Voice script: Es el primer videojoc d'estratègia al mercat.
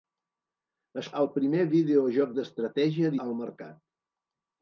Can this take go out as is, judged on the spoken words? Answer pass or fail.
pass